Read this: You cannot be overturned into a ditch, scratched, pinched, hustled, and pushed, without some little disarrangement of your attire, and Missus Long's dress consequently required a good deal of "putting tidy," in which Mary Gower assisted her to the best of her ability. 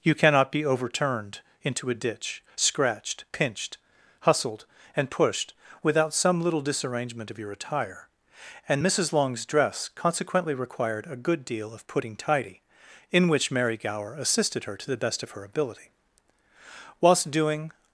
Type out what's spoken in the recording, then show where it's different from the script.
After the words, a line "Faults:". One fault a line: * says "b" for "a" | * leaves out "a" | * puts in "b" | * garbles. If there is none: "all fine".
You cannot be overturned into a ditch, scratched, pinched, hustled, and pushed, without some little disarrangement of your attire, and Missus Long's dress consequently required a good deal of "putting tidy," in which Mary Gower assisted her to the best of her ability. Whilst doing
Faults:
* puts in "Whilst doing"